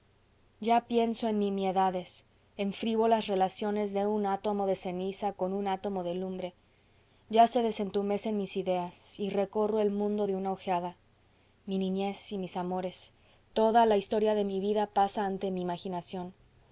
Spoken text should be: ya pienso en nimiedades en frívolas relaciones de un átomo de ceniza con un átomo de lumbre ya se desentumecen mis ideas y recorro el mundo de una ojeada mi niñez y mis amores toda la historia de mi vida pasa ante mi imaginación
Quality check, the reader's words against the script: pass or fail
pass